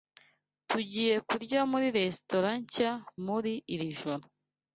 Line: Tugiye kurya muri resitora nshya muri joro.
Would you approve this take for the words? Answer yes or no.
no